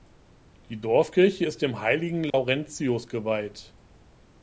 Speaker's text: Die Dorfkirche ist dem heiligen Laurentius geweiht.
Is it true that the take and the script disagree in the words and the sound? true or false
true